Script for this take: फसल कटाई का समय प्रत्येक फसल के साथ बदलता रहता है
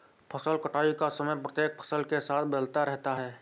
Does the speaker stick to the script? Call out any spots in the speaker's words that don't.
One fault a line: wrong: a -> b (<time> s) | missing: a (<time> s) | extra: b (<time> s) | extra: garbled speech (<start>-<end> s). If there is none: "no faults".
no faults